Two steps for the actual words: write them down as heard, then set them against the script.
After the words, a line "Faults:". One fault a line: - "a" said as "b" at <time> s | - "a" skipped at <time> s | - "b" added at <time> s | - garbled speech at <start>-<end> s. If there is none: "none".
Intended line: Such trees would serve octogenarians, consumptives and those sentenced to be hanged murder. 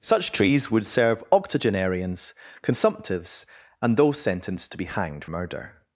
Such trees would serve octogenarians, consumptives and those sentenced to be hanged murder.
Faults:
none